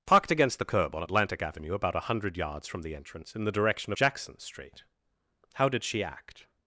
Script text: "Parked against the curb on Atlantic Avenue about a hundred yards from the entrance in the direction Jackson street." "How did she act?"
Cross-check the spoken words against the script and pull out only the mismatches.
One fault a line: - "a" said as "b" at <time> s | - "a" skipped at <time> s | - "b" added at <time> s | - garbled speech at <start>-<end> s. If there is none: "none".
none